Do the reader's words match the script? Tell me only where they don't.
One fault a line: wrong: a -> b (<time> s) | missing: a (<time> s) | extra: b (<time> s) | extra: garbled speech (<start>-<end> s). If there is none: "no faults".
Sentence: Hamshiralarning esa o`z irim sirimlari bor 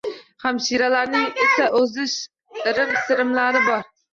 no faults